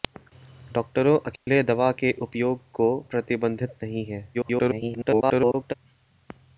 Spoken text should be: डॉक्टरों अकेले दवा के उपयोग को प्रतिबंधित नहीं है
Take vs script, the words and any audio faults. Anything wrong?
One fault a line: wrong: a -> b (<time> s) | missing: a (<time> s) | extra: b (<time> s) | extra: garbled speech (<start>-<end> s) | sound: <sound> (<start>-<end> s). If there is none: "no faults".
sound: dropout (1.4-1.5 s)
extra: garbled speech (4.3-5.7 s)